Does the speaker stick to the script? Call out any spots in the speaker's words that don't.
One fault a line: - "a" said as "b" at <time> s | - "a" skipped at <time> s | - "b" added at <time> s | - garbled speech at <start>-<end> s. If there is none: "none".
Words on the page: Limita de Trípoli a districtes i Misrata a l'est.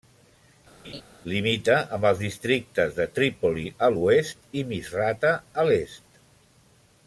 - "amb els districtes" added at 2.0 s
- "districtes" said as "l'oest" at 4.0 s